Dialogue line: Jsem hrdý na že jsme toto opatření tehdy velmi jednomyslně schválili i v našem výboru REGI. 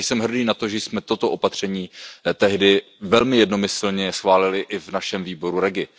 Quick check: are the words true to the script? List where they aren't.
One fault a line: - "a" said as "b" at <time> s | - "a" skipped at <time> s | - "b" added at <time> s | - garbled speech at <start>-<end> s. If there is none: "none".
- "to" added at 0.5 s